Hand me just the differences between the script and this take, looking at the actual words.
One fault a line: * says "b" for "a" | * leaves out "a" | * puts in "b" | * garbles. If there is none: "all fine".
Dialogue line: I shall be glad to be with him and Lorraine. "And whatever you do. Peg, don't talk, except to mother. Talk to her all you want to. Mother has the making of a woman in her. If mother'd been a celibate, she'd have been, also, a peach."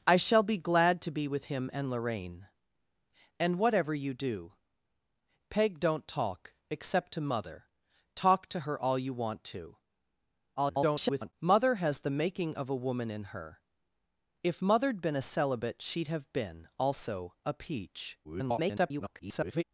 * garbles
* garbles